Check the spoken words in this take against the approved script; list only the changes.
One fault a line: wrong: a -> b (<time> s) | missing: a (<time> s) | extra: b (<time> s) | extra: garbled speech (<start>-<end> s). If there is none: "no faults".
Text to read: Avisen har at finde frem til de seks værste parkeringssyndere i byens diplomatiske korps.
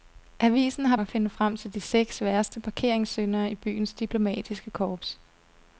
no faults